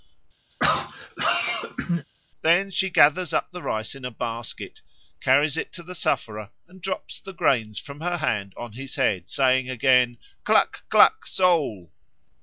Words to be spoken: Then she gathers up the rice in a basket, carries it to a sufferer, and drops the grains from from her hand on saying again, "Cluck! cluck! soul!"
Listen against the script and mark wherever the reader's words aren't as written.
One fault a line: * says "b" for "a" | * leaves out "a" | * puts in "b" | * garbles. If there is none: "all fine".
* says "the" for "a"
* leaves out "from"
* puts in "his head"